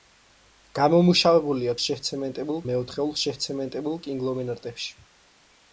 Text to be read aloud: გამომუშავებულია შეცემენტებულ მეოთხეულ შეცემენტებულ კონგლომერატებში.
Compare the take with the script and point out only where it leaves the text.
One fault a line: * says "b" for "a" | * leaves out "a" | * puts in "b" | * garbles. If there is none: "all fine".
all fine